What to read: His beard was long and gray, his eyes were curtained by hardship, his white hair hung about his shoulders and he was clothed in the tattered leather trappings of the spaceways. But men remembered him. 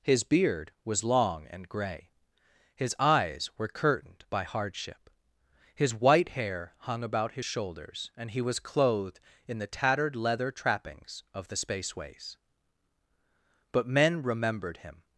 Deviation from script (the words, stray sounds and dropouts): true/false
false